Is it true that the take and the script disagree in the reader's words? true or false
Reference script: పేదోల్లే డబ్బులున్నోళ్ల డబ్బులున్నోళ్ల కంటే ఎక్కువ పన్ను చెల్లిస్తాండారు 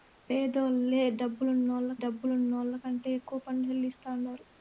false